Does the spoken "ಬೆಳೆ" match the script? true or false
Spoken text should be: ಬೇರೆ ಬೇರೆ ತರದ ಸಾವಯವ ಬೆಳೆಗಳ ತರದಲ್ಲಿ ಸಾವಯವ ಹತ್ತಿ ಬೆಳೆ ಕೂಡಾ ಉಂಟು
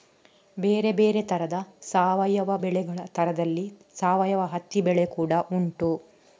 true